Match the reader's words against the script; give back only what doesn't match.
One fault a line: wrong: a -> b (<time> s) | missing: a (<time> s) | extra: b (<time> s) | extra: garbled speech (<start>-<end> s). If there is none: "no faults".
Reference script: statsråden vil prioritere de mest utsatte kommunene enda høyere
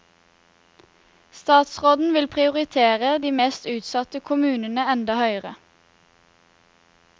no faults